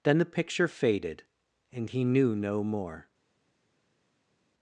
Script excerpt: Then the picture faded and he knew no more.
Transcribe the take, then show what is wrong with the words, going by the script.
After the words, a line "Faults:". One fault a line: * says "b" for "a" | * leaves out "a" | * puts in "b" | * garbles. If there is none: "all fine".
Then the picture faded and he knew no more.
Faults:
all fine